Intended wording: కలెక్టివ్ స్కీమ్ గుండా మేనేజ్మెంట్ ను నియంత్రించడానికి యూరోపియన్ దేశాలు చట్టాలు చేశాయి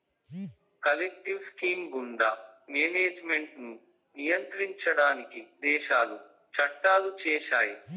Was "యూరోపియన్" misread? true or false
true